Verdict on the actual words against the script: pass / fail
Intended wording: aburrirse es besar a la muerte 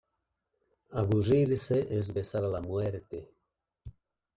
pass